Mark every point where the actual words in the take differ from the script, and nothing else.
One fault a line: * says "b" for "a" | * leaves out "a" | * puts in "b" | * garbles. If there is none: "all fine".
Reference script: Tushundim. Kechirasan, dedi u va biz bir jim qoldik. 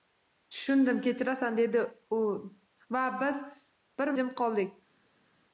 all fine